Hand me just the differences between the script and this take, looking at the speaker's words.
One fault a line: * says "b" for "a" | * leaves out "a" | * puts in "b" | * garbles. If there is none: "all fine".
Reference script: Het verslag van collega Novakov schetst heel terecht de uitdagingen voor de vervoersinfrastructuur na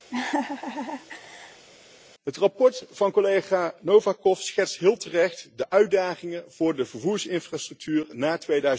all fine